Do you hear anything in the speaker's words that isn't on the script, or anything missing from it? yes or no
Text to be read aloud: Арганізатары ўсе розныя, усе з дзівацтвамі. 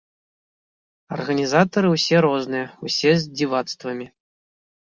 no